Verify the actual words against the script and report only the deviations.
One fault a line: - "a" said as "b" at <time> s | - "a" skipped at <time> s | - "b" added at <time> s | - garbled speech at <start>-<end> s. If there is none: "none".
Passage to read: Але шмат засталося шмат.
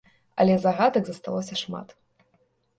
- "шмат" said as "загадак" at 0.6 s